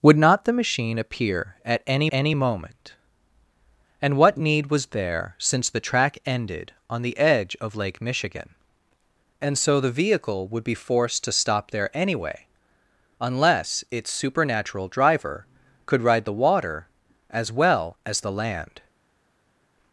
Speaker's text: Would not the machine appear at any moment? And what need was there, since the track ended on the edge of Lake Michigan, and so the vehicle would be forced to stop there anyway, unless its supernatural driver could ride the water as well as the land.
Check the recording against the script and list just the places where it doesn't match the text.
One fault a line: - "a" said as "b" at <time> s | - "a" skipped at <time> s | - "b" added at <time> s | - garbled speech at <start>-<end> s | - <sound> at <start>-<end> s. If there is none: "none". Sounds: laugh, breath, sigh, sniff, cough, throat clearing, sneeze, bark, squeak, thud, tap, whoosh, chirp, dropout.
- "any" added at 2.1 s